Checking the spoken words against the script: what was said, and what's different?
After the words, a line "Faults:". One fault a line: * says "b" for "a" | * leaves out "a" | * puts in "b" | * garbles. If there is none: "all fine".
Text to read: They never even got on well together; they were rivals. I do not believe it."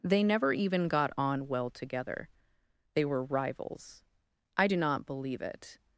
They never even got on well together; they were rivals. I do not believe it."
Faults:
all fine